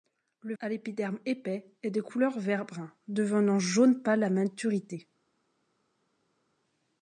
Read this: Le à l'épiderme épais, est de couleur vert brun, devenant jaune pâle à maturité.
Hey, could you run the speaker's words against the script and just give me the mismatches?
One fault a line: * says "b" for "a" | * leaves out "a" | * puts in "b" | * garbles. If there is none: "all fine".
all fine